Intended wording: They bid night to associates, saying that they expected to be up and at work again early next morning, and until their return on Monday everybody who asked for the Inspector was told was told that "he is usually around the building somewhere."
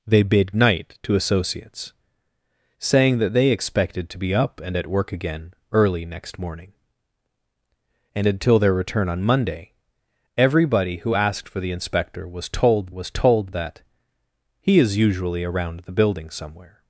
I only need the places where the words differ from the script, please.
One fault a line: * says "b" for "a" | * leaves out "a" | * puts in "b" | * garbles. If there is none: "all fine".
all fine